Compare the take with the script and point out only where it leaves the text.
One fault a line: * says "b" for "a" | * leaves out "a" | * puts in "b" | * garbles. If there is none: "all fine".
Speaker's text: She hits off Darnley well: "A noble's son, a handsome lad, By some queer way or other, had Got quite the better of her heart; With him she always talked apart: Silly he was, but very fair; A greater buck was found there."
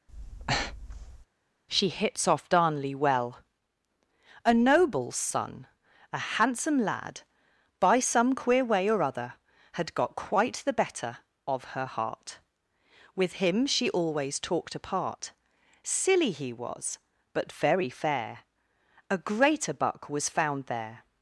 all fine